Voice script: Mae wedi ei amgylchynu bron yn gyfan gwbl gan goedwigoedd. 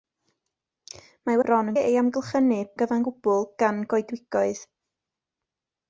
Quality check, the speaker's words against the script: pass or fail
fail